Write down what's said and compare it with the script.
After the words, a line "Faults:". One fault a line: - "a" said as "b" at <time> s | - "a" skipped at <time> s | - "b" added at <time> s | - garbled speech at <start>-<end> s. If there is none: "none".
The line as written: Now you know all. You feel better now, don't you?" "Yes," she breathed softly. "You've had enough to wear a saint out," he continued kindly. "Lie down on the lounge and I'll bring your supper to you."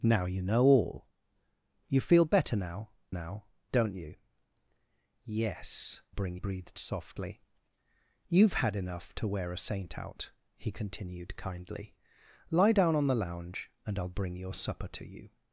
Now you know all. You feel better now now, don't you?" "Yes," bring breathed softly. "You've had enough to wear a saint out," he continued kindly. "Lie down on the lounge and I'll bring your supper to you."
Faults:
- "now" added at 3.1 s
- "she" said as "bring" at 6.1 s